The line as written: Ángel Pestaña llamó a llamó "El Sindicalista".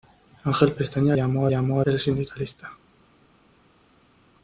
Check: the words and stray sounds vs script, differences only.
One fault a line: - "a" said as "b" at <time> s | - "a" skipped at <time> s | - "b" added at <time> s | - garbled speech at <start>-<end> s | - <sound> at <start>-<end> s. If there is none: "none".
none